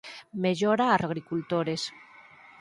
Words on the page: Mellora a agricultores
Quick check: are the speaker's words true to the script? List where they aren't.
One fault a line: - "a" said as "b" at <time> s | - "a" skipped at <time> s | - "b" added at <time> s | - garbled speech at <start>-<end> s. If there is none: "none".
none